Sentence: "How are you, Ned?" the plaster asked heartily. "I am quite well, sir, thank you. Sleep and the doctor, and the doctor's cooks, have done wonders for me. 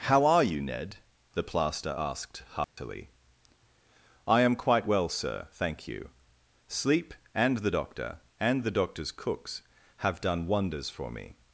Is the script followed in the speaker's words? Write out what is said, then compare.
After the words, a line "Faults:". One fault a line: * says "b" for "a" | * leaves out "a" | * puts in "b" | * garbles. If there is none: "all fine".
"How are you, Ned?" the plaster asked heartily. "I am quite well, sir, thank you. Sleep and the doctor, and the doctor's cooks, have done wonders for me.
Faults:
all fine